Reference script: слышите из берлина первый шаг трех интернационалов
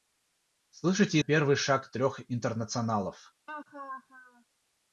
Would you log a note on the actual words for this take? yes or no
yes